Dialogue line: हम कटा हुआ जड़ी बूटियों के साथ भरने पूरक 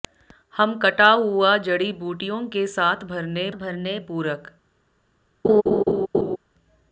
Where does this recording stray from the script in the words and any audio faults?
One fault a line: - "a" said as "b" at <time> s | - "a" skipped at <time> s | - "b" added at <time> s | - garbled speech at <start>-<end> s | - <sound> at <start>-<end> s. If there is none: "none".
- "भरने" added at 3.5 s
- laugh at 5.4-6.4 s